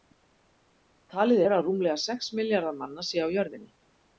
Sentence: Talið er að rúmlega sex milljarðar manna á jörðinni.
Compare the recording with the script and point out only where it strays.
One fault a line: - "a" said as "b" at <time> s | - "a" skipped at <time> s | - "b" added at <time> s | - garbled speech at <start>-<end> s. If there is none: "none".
- "séu" added at 3.1 s